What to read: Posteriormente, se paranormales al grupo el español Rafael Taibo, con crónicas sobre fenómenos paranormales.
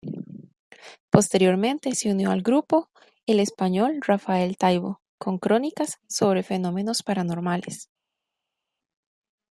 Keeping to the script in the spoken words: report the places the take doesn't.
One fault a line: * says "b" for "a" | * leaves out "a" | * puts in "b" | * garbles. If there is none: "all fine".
* says "unió" for "paranormales"